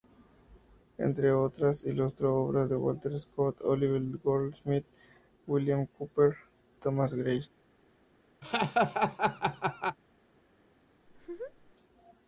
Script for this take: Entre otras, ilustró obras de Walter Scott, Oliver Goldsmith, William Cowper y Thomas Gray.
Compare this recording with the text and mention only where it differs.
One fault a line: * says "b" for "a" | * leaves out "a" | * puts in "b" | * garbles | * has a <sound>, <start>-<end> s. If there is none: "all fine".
* leaves out "y"
* has a laugh, 8.4-10.0 s
* has a laugh, 11.1-11.8 s